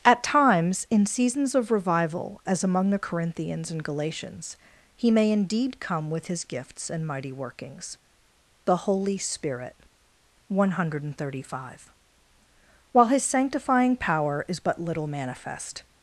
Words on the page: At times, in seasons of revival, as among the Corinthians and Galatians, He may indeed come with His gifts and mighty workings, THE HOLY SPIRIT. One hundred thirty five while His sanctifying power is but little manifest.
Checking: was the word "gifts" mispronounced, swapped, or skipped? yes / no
no